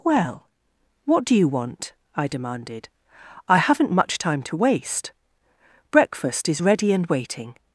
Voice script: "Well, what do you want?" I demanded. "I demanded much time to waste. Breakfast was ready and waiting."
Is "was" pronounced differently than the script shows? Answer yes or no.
yes